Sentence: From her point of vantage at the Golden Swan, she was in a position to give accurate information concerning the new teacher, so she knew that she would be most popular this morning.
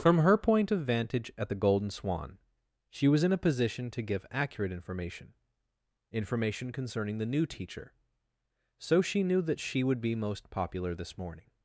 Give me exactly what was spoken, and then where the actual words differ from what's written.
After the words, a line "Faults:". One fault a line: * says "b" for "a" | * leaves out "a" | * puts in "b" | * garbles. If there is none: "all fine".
From her point of vantage at the Golden Swan, she was in a position to give accurate information information concerning the new teacher, so she knew that she would be most popular this morning.
Faults:
* puts in "information"